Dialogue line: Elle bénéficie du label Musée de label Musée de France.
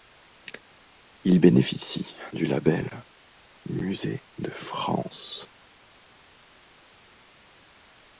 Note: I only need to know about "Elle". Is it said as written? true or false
false